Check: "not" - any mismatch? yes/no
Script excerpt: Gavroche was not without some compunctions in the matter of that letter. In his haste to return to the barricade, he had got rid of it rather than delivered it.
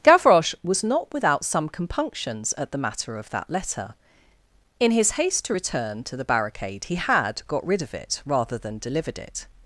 no